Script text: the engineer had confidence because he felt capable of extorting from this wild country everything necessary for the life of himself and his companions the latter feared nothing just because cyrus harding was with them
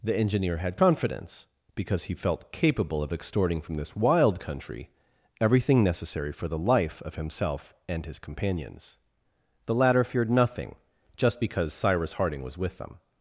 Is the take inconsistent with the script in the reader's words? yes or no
no